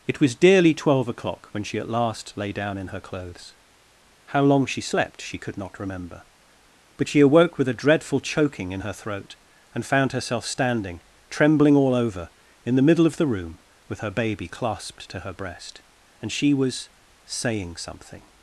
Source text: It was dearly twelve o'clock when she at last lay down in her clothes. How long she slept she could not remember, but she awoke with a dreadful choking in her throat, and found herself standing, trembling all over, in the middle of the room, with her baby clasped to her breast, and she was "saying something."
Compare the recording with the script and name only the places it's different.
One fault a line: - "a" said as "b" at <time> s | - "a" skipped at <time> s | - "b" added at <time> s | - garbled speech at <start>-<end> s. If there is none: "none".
none